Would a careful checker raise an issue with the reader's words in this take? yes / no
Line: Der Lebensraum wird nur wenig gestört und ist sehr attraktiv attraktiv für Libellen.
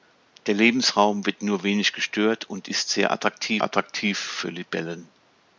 no